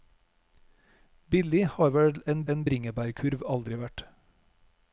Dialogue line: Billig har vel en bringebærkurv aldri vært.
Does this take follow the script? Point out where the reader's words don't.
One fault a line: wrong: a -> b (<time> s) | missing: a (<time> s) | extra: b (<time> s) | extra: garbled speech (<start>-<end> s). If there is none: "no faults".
extra: en (2.5 s)